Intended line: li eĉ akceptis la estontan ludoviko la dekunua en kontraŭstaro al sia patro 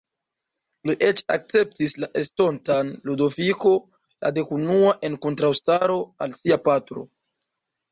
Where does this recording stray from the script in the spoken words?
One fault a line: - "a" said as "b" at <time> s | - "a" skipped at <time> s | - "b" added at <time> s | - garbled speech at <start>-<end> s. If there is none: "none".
none